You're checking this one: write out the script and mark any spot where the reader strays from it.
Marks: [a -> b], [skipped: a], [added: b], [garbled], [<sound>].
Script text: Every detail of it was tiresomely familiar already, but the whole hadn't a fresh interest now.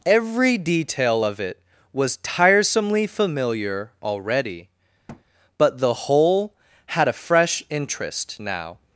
Every detail of it was tiresomely familiar already, [thud] but the whole [hadn't -> had] a fresh interest now.